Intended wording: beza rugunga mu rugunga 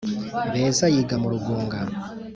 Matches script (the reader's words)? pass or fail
fail